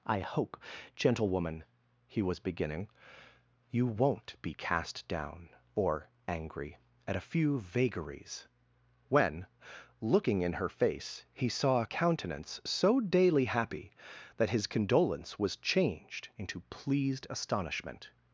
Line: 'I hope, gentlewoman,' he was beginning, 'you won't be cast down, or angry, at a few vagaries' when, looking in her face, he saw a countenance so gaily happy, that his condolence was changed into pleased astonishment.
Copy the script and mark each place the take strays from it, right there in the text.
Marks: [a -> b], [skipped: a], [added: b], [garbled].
'I hope, gentlewoman,' he was beginning, 'you won't be cast down, or angry, at a few vagaries' when, looking in her face, he saw a countenance so [gaily -> daily] happy, that his condolence was changed into pleased astonishment.